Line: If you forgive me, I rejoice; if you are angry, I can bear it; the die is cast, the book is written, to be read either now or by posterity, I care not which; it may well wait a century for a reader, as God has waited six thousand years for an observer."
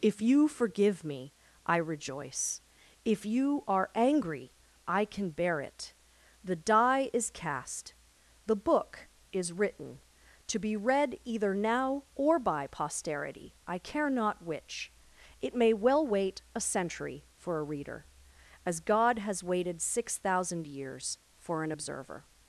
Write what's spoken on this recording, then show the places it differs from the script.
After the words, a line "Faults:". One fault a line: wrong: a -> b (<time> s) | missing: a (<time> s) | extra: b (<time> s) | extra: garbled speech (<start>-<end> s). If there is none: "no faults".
If you forgive me, I rejoice; if you are angry, I can bear it; the die is cast, the book is written, to be read either now or by posterity, I care not which; it may well wait a century for a reader, as God has waited six thousand years for an observer."
Faults:
no faults